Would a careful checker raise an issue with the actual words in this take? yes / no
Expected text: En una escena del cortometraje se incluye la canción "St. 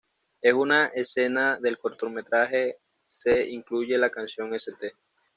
no